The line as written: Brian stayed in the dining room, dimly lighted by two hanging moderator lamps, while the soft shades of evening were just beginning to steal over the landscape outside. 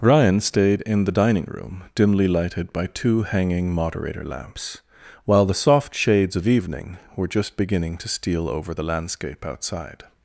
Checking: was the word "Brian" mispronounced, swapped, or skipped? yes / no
yes